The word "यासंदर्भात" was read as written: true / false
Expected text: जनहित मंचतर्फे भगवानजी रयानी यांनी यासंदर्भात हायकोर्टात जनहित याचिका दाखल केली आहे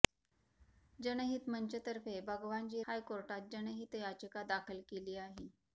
false